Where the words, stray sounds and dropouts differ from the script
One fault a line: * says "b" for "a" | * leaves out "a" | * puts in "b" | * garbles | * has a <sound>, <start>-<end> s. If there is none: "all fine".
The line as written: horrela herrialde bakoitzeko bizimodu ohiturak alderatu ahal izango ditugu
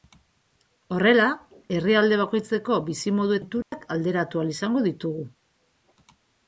* has a dropout, 3.6-3.7 s